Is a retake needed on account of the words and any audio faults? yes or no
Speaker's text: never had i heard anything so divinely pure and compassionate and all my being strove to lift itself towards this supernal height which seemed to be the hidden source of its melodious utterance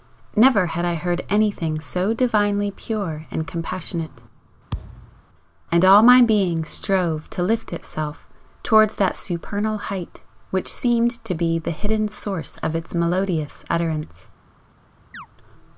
yes